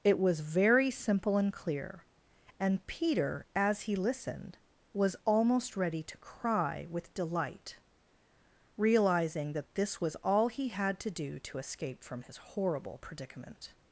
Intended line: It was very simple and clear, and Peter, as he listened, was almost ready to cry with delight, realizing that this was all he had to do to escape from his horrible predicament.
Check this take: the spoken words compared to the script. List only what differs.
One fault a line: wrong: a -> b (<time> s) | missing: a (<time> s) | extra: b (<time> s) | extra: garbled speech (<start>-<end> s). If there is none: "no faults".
no faults